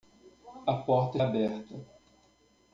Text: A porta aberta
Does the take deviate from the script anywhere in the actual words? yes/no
no